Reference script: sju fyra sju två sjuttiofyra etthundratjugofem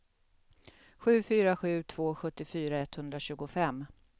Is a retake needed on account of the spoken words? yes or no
no